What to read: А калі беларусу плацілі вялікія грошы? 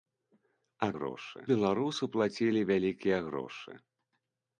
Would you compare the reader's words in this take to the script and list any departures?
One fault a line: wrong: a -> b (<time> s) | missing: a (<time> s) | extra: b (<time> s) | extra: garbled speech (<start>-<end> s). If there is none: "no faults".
wrong: калі -> грошы (1.0 s)